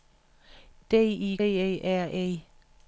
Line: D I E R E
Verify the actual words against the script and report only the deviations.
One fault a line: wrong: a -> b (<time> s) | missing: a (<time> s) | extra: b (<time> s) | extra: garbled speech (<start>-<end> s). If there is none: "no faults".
no faults